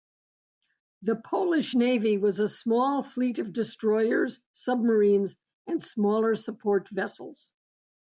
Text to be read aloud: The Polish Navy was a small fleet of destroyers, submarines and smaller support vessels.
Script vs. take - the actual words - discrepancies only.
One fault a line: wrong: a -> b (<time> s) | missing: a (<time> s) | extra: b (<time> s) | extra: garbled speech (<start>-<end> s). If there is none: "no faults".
no faults